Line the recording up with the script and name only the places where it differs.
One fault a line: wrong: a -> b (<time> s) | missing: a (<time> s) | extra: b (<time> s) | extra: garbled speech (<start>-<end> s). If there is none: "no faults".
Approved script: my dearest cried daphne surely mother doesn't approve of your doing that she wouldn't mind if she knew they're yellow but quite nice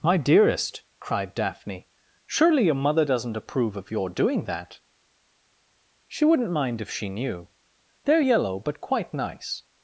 extra: your (2.6 s)